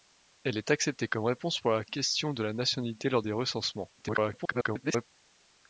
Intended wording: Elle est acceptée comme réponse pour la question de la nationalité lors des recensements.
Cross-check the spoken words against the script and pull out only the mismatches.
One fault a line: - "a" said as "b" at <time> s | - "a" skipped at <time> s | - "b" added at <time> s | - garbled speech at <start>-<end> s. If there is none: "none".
- garbled speech at 4.0-5.0 s